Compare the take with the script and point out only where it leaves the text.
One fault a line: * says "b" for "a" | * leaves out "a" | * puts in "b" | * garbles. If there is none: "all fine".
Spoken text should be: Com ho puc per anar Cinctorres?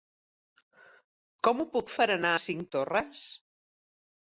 all fine